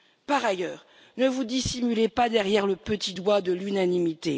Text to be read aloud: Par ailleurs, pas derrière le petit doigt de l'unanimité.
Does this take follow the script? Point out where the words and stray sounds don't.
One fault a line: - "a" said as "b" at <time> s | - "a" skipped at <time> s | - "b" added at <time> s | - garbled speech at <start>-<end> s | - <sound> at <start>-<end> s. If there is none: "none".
- "ne vous dissimulez" added at 1.2 s